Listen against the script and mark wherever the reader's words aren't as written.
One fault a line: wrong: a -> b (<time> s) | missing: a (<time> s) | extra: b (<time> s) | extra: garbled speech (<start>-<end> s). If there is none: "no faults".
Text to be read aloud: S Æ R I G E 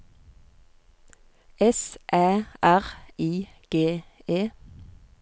no faults